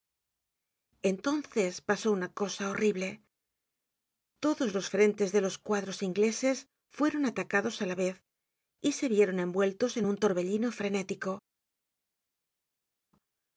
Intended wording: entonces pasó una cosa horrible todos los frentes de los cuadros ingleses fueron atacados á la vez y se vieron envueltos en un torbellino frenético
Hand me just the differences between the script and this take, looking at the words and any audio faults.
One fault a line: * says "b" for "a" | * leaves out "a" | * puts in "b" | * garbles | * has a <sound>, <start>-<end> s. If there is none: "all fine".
all fine